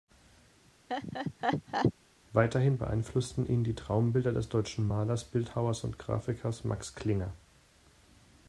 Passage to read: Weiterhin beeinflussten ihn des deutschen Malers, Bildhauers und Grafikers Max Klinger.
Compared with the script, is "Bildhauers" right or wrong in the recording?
right